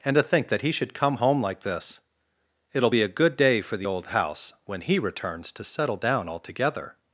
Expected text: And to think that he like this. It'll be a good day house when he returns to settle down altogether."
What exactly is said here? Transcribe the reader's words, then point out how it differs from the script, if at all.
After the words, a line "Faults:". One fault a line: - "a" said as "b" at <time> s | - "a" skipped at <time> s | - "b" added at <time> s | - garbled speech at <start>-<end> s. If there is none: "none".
And to think that he should come home like this. It'll be a good day for the old house when he returns to settle down altogether."
Faults:
- "should come home" added at 0.7 s
- "for the old" added at 3.6 s